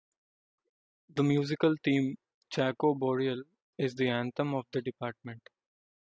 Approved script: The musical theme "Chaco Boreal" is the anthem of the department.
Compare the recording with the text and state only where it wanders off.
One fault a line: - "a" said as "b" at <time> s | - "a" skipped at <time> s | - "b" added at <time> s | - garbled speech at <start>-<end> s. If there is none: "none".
none